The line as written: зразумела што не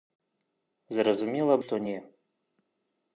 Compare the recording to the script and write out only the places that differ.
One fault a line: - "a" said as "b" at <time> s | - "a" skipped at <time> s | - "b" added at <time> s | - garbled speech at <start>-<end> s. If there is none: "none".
none